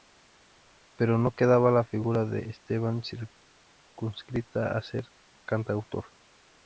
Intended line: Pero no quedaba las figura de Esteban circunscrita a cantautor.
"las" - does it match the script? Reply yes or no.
no